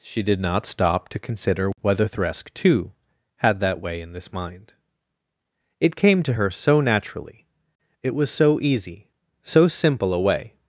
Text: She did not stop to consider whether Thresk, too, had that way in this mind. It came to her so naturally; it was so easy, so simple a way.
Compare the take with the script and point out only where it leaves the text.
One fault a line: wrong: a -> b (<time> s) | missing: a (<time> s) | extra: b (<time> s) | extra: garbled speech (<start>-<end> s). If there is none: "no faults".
no faults